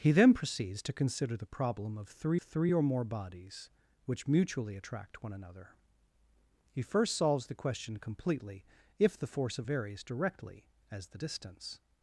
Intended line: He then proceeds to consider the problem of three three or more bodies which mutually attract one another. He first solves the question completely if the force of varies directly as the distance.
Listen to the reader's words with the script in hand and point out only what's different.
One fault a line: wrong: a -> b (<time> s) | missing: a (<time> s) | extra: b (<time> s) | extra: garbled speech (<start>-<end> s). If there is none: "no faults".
no faults